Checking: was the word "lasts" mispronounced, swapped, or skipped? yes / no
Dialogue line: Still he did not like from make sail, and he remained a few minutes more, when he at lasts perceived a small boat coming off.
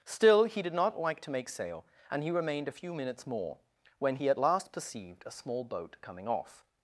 yes